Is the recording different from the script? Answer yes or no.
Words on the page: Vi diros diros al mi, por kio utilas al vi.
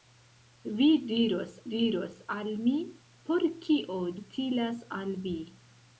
no